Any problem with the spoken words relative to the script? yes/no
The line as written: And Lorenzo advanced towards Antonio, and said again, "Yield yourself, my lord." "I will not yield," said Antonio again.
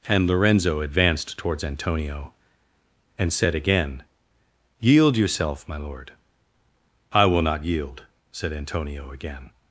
no